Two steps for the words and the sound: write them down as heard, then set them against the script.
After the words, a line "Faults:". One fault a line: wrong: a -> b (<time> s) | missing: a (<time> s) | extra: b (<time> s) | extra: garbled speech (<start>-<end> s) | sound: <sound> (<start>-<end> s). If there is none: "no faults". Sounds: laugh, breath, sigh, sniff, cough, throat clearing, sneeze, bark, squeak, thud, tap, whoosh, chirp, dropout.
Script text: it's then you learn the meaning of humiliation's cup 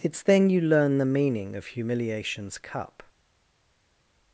it's then you learn the meaning of humiliation's cup
Faults:
no faults